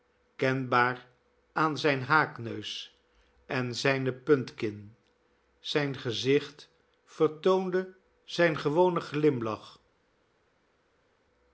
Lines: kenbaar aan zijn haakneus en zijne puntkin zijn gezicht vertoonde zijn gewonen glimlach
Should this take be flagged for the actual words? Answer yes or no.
no